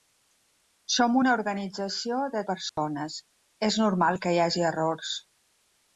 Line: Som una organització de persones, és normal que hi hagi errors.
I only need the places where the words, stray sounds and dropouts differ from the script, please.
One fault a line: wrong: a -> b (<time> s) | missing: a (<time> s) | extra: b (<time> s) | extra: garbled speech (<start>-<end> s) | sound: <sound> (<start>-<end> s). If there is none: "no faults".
sound: dropout (2.7-2.8 s)